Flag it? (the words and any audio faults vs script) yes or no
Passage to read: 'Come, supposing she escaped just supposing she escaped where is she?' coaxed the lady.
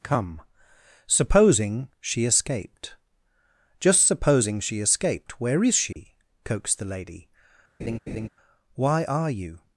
yes